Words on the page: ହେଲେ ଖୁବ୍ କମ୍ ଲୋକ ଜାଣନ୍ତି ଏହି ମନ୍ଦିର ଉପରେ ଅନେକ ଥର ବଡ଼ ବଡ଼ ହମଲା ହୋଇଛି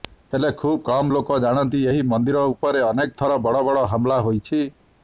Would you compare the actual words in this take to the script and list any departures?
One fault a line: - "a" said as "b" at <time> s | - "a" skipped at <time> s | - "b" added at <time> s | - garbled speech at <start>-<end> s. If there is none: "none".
none